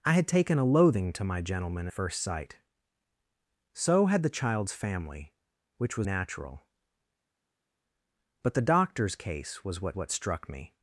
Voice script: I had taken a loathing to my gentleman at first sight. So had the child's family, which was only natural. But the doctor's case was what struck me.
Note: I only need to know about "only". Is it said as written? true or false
false